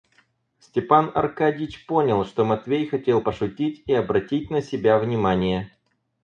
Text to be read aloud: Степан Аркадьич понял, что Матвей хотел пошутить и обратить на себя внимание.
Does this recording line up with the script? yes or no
yes